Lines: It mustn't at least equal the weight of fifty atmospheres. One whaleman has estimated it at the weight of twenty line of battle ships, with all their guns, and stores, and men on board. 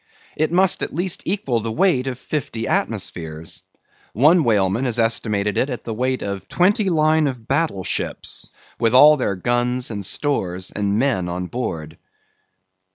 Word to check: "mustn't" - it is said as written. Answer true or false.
false